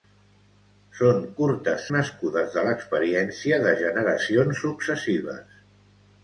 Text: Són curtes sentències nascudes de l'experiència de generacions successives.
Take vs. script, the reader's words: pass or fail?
fail